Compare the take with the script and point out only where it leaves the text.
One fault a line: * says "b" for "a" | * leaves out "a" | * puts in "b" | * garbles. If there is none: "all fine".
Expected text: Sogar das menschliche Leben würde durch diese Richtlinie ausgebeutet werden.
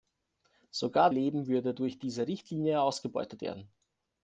* leaves out "das menschliche"